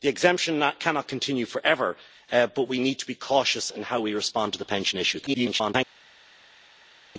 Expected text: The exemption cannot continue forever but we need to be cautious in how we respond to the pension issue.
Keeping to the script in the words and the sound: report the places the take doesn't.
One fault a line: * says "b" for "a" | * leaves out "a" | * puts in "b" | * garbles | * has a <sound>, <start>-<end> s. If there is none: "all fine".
* garbles